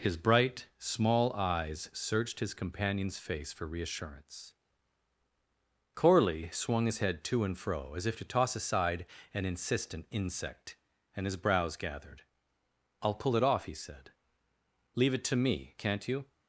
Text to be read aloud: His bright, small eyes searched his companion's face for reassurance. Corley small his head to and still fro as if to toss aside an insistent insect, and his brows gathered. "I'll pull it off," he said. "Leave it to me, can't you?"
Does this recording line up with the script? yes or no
no